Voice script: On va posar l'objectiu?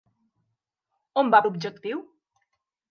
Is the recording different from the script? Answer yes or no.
yes